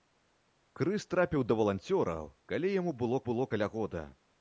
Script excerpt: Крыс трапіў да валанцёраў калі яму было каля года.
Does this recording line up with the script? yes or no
no